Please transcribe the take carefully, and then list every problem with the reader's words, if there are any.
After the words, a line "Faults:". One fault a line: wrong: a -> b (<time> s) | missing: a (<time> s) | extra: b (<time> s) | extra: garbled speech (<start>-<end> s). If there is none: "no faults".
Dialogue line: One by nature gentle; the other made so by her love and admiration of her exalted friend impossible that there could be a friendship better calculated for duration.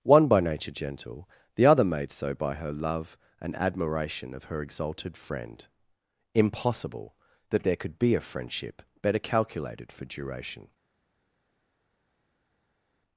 One by nature gentle; the other made so by her love and admiration of her exalted friend impossible that there could be a friendship better calculated for duration.
Faults:
no faults